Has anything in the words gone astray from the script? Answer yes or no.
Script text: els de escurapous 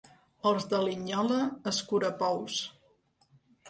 yes